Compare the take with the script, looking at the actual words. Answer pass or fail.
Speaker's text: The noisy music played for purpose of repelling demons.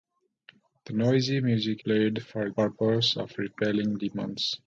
pass